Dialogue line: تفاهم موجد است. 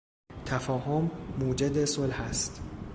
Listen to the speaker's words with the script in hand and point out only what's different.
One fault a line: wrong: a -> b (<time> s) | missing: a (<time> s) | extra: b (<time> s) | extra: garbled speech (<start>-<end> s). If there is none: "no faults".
extra: صلح (1.8 s)